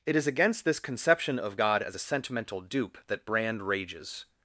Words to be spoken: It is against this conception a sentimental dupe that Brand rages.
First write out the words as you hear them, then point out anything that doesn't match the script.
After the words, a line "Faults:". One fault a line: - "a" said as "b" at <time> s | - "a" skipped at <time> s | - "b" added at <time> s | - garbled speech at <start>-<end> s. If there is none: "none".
It is against this conception of God as a sentimental dupe that Brand rages.
Faults:
- "of God as" added at 1.4 s